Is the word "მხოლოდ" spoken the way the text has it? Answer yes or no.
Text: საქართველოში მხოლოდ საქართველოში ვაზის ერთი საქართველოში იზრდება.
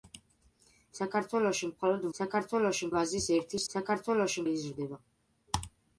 yes